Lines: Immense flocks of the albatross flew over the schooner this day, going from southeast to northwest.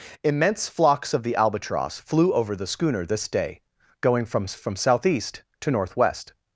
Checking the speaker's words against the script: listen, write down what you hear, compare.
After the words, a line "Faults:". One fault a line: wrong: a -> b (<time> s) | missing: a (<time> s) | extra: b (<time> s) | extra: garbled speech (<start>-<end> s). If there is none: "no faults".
Immense flocks of the albatross flew over the schooner this day, going from from southeast to northwest.
Faults:
extra: from (4.5 s)